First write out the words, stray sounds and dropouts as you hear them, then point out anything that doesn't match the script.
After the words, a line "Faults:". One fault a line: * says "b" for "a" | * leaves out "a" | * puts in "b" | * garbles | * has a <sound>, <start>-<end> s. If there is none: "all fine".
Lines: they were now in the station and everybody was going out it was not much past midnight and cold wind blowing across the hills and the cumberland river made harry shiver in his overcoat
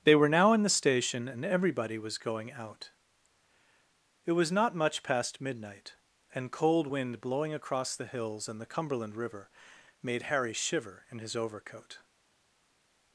they were now in the station and everybody was going out it was not much past midnight and cold wind blowing across the hills and the cumberland river made harry shiver in his overcoat
Faults:
all fine